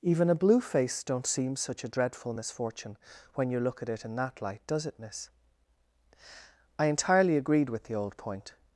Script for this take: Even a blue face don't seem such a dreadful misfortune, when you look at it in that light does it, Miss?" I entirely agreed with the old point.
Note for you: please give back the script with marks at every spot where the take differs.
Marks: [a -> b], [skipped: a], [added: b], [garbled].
Even a blue face don't seem such a dreadful misfortune, when you look at it in that light does it, Miss?" I entirely agreed with the old point.